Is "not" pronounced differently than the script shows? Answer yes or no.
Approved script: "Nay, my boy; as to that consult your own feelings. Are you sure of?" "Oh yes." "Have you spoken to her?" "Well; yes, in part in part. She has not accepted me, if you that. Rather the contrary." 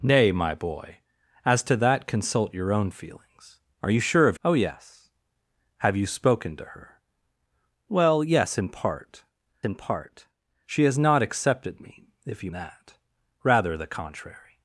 no